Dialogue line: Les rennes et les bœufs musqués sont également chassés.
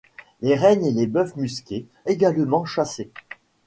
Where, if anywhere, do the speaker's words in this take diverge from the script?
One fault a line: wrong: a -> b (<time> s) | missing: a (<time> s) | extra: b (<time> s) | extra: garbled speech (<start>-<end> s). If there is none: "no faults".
missing: sont (1.9 s)